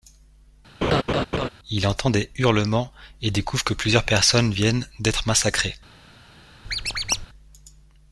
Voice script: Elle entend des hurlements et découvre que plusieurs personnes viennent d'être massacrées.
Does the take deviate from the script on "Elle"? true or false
true